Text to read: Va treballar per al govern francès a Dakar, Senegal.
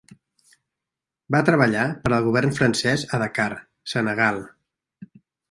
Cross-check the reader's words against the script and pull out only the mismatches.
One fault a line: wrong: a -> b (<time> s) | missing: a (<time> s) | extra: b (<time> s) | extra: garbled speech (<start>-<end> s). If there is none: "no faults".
no faults